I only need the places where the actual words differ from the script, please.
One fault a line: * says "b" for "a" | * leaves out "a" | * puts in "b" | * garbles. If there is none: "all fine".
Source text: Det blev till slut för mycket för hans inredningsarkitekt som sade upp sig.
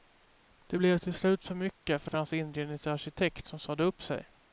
* puts in "för"